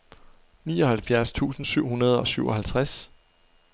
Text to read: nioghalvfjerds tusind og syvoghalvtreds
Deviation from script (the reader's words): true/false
true